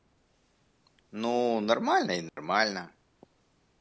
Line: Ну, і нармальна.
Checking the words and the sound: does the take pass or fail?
fail